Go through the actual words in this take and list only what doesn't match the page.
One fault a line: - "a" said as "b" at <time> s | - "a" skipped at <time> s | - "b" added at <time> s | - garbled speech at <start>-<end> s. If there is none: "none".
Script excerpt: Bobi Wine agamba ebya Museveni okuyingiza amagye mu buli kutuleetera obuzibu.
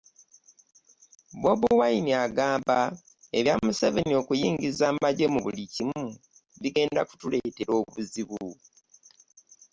- "kimu bigenda" added at 5.7 s